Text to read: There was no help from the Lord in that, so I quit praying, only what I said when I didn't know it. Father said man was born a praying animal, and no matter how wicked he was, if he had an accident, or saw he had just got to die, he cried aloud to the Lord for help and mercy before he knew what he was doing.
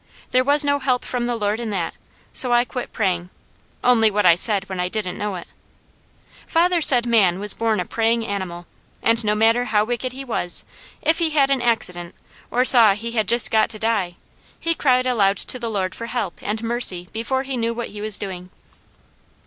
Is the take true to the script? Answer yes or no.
yes